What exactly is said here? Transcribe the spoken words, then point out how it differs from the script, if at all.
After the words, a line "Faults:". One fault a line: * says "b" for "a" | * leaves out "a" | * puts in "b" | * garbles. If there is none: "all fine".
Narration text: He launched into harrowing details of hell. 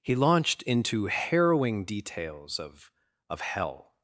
He launched into harrowing details of of hell.
Faults:
* puts in "of"